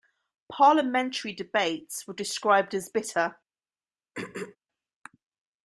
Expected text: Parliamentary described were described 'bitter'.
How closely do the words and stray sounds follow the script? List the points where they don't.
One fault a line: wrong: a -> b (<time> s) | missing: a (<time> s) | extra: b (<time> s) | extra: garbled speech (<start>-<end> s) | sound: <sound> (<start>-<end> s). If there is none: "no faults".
wrong: described -> debates (1.3 s)
extra: as (2.7 s)
sound: throat clearing (4.1-4.6 s)